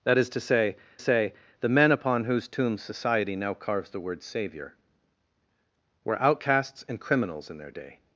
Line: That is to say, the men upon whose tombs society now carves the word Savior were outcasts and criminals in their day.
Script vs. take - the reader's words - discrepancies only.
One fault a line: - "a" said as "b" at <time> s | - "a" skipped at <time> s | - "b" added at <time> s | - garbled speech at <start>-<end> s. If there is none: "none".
- "say" added at 1.0 s